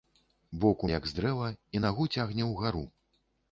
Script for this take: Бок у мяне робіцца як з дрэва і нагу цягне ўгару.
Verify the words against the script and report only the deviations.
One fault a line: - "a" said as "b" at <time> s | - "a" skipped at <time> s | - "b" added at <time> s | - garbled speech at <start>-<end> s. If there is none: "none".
- "мяне робіцца" skipped at 0.9 s